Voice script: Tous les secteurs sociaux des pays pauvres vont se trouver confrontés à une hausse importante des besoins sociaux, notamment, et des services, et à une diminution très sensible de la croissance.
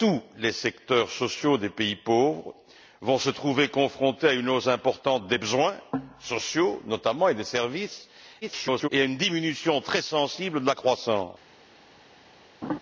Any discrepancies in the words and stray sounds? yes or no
yes